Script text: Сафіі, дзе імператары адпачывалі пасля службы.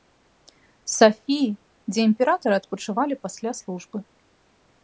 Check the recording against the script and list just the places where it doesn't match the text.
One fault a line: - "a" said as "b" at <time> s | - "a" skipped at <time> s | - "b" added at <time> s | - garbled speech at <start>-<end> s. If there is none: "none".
none